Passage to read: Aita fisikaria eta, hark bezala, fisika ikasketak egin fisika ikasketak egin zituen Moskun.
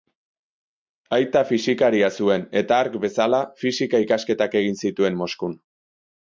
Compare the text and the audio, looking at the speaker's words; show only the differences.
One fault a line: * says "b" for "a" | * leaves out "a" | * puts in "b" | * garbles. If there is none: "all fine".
* puts in "zuen"
* leaves out "fisika ikasketak egin"